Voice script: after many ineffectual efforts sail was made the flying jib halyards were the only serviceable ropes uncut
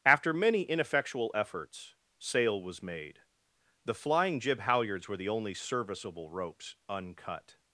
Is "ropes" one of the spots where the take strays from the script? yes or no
no